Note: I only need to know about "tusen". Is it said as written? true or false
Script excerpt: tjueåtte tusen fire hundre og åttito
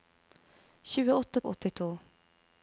false